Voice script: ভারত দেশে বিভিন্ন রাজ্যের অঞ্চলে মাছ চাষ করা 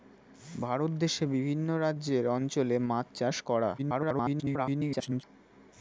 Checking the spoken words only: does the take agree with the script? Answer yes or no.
no